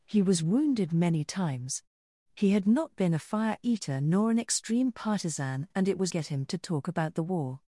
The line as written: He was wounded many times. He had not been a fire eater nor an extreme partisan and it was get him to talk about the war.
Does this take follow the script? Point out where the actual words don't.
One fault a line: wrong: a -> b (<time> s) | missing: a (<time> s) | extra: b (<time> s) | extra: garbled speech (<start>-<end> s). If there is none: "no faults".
no faults